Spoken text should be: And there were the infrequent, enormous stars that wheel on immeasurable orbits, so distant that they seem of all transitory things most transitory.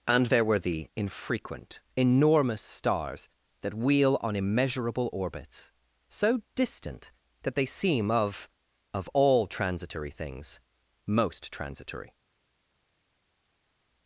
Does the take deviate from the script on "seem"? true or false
false